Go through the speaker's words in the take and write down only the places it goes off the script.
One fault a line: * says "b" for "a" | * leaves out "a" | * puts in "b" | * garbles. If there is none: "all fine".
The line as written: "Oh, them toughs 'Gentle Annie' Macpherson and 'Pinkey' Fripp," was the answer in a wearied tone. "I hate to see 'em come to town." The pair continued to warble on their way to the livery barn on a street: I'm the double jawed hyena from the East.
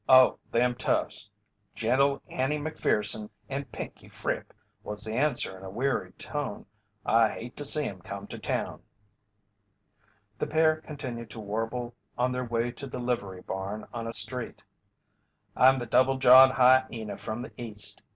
all fine